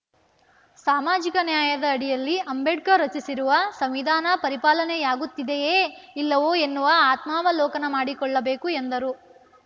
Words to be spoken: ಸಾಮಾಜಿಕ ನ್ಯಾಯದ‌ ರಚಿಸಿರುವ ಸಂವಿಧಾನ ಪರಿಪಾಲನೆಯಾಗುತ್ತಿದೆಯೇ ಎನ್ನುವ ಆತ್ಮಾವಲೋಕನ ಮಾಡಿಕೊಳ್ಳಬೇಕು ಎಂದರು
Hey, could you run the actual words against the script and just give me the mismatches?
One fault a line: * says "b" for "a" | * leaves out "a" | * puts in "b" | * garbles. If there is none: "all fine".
* puts in "ಅಡಿಯಲ್ಲಿ ಅಂಬೇಡ್ಕರ್"
* puts in "ಇಲ್ಲವೋ"